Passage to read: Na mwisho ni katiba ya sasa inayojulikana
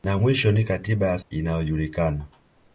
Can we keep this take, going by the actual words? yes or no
no